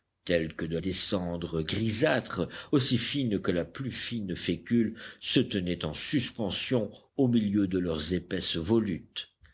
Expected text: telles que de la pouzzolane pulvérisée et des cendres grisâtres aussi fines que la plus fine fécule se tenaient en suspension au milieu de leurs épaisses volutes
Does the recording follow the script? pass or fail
fail